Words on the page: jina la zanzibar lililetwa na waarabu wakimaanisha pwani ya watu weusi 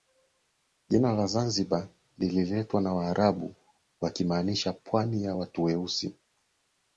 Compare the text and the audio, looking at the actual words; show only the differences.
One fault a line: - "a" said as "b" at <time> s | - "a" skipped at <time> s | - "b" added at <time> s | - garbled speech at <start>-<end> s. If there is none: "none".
none